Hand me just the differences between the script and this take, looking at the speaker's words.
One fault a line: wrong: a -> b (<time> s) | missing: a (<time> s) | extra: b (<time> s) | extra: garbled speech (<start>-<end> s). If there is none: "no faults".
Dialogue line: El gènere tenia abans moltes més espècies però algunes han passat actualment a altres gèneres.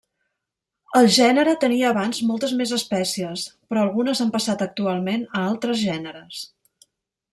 no faults